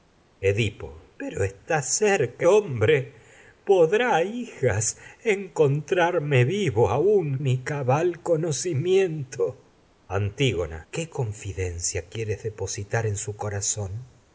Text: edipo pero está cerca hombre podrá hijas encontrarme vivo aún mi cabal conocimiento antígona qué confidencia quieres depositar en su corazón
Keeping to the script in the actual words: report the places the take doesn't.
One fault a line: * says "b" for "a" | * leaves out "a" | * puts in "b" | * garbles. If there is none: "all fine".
all fine